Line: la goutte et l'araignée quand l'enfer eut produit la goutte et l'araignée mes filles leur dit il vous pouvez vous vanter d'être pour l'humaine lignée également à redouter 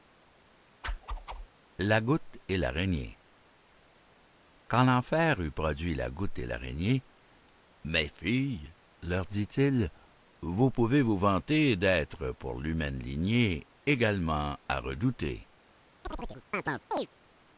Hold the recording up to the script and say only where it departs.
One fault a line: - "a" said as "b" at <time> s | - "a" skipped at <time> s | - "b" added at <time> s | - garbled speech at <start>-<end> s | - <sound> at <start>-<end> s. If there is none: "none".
- whoosh at 0.8-1.5 s
- chirp at 16.0-17.1 s